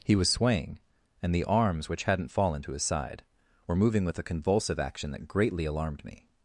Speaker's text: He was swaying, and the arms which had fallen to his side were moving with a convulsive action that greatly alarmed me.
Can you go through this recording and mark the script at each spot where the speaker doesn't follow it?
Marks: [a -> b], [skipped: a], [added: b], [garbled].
He was swaying, and the arms which [had -> hadn't] fallen to his side were moving with a convulsive action that greatly alarmed me.